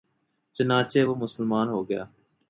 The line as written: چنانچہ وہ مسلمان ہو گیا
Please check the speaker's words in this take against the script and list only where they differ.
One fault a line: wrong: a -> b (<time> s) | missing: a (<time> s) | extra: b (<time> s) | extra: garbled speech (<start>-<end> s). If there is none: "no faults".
no faults